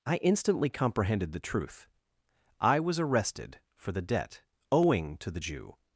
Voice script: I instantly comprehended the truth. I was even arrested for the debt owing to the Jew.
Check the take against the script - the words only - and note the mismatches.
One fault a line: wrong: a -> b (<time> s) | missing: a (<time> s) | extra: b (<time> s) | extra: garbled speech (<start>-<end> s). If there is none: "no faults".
missing: even (3.0 s)